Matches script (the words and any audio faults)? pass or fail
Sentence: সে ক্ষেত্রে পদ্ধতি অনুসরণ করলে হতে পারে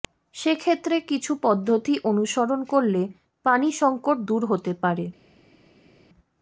fail